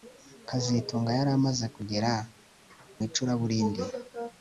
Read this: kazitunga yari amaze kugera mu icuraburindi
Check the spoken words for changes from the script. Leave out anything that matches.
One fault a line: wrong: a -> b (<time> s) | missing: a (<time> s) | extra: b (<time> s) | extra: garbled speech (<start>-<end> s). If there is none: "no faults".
missing: mu (2.1 s)